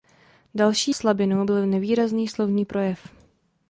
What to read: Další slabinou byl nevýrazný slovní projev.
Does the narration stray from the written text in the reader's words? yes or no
no